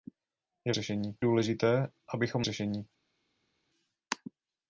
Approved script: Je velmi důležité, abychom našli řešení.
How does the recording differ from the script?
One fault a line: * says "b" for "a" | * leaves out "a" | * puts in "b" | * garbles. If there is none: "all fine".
* says "řešení" for "velmi"
* leaves out "našli"